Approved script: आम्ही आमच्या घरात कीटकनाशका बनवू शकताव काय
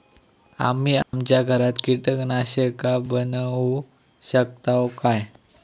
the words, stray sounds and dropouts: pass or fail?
fail